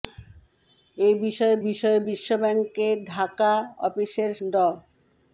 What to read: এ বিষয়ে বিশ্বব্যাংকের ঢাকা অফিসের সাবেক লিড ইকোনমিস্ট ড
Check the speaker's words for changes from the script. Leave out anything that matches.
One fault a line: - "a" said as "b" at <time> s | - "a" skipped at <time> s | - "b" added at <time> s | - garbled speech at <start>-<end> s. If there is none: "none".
- "বিষয়ে" added at 1.7 s
- "সাবেক লিড ইকোনমিস্ট" skipped at 4.3 s